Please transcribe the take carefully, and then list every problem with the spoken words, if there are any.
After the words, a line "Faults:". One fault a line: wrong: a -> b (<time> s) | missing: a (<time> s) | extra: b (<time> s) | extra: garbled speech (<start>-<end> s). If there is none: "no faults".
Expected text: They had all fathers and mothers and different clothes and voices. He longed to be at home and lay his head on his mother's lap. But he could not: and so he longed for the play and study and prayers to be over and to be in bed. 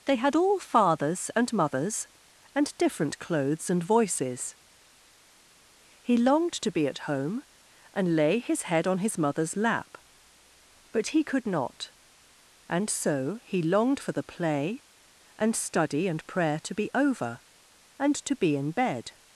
They had all fathers and mothers and different clothes and voices. He longed to be at home and lay his head on his mother's lap. But he could not: and so he longed for the play and study and prayer to be over and to be in bed.
Faults:
wrong: prayers -> prayer (16.3 s)